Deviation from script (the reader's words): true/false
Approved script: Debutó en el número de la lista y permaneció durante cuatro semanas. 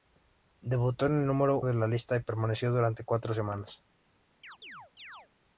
false